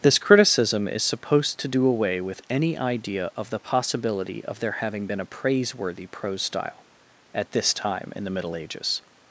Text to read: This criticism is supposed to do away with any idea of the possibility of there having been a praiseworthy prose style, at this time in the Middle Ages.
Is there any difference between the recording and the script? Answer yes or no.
no